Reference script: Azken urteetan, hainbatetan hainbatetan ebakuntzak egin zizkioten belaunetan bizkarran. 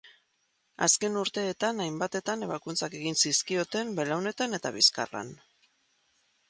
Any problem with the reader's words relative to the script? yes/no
yes